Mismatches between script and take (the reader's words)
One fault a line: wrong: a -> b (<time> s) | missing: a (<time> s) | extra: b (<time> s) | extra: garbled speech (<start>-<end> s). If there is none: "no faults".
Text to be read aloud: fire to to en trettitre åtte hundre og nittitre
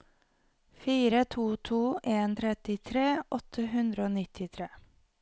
no faults